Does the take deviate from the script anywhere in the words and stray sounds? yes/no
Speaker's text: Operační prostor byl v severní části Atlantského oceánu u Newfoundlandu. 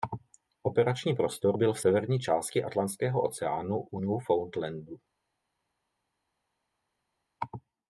no